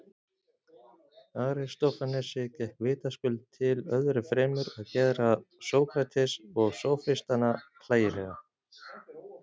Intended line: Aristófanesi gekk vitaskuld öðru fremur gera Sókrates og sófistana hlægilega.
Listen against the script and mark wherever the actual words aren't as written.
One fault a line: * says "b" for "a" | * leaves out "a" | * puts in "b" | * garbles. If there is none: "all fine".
* puts in "til"
* puts in "að"